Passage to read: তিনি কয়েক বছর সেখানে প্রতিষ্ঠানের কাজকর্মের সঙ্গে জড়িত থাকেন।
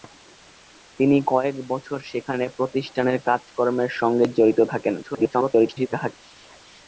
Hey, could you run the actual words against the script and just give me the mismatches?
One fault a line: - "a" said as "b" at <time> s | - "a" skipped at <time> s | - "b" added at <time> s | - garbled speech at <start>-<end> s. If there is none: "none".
- garbled speech at 5.0-6.1 s